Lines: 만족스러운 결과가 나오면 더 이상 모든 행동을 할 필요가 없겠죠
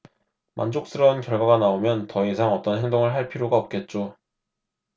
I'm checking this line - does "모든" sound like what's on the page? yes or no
no